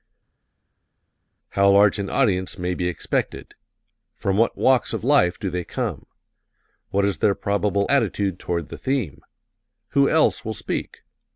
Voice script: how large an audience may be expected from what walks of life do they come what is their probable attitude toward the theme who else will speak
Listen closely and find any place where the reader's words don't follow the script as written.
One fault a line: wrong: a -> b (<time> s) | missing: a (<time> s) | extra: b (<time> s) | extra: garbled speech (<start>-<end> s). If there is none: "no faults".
no faults